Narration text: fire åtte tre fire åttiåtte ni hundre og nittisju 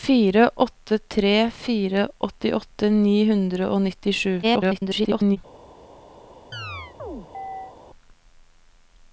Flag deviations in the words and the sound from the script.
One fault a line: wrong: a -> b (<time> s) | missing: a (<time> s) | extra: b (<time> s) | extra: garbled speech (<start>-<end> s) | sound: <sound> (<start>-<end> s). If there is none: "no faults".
extra: garbled speech (4.4-5.4 s)
sound: chirp (6.5-7.8 s)